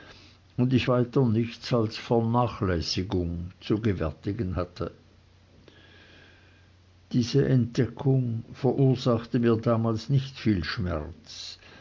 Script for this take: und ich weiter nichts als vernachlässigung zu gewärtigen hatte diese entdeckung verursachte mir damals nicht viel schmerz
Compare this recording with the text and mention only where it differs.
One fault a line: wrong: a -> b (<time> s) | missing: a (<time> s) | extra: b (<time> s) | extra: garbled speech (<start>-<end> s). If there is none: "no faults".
no faults